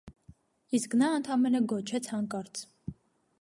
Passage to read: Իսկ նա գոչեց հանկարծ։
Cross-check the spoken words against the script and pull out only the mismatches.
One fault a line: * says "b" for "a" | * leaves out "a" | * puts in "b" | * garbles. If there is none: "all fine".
* puts in "ընդամենը"